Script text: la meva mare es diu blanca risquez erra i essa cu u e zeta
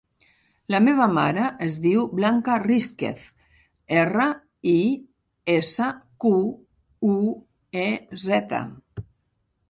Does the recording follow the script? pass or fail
pass